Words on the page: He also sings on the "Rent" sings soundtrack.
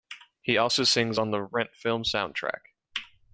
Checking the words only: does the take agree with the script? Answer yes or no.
no